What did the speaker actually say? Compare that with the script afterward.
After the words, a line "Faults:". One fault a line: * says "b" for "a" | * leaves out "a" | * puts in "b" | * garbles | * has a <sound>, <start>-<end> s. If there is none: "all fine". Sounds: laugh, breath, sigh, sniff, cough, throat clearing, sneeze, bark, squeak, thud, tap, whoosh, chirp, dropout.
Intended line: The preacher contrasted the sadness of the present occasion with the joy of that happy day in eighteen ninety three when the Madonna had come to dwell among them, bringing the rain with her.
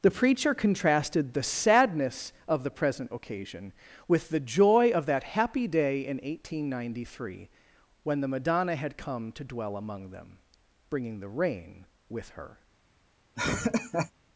The preacher contrasted the sadness of the present occasion with the joy of that happy day in eighteen ninety three when the Madonna had come to dwell among them, bringing the rain with her.
Faults:
* has a laugh, 13.4-14.1 s